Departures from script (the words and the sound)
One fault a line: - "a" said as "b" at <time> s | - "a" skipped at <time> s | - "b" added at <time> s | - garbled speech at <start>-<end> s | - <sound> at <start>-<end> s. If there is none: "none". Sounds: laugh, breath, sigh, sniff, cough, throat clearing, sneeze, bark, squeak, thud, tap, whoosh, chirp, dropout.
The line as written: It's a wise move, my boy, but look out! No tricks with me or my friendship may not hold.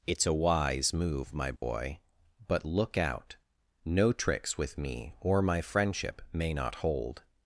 - dropout at 1.6-1.6 s